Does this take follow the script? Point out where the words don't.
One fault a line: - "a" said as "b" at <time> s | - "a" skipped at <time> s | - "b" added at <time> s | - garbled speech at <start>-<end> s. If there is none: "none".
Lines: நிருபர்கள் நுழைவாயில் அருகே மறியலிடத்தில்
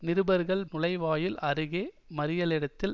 none